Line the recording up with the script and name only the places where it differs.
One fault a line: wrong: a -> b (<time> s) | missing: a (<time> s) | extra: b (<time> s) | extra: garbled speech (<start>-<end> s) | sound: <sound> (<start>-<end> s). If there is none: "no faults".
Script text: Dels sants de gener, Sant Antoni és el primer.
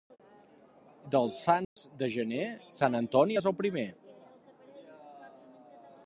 sound: dropout (1.6-1.8 s)